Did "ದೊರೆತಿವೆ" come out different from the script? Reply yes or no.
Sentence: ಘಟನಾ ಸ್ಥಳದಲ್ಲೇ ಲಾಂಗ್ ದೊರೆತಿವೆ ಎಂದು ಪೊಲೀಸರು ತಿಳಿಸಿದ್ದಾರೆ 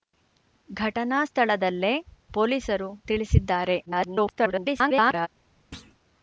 yes